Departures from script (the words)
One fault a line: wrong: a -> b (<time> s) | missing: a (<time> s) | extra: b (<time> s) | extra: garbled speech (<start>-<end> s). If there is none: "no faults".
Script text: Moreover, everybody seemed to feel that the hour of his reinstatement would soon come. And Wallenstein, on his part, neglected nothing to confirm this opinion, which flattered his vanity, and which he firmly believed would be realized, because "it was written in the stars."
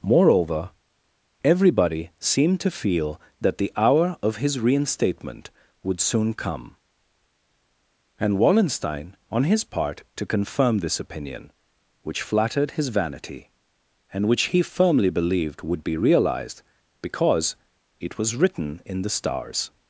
missing: neglected nothing (10.0 s)